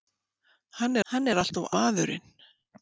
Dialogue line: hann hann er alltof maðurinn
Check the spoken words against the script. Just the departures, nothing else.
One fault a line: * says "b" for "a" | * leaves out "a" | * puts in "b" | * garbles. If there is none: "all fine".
all fine